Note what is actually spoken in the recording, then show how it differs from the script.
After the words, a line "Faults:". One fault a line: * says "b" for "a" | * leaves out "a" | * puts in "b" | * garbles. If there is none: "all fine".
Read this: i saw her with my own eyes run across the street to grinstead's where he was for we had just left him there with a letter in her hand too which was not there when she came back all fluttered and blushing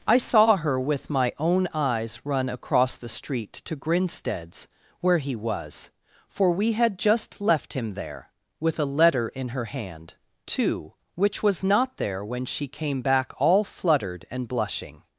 i saw her with my own eyes run across the street to grinstead's where he was for we had just left him there with a letter in her hand too which was not there when she came back all fluttered and blushing
Faults:
all fine